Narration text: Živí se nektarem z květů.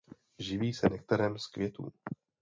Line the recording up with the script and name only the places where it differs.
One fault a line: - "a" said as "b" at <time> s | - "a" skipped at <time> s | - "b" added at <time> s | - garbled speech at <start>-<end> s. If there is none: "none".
none